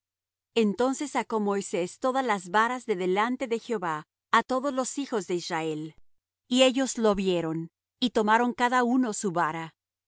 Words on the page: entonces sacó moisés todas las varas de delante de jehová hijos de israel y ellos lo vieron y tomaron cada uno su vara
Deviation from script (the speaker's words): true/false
true